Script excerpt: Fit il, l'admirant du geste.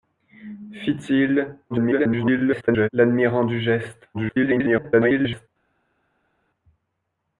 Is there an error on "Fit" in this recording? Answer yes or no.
no